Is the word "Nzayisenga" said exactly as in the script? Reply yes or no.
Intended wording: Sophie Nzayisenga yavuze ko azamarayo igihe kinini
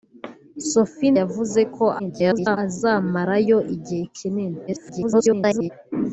no